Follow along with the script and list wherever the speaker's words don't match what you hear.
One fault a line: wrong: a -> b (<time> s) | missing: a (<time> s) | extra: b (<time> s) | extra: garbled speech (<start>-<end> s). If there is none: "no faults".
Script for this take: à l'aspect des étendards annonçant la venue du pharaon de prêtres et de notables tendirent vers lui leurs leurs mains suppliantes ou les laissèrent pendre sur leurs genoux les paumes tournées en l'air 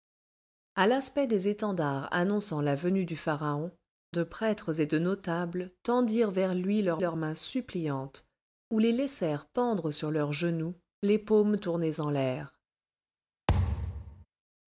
no faults